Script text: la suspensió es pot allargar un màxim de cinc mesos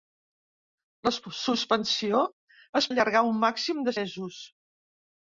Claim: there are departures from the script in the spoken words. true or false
true